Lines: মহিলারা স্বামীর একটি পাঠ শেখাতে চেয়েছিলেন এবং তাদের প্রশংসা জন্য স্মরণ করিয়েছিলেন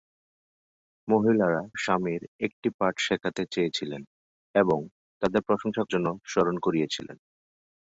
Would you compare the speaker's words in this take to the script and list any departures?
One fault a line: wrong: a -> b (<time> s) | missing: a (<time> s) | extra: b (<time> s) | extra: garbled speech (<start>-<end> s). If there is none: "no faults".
no faults